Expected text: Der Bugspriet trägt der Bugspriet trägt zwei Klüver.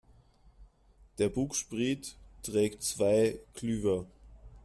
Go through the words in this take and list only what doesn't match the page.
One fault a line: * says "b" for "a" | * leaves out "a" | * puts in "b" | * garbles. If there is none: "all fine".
* leaves out "der Bugspriet trägt"